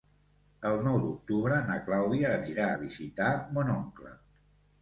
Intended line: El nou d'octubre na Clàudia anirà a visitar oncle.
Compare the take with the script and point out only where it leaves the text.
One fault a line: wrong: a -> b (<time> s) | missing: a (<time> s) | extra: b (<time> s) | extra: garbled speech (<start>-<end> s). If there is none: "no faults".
extra: mon (3.6 s)